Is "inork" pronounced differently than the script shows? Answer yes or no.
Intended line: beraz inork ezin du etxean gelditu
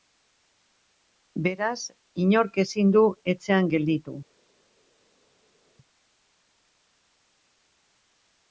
no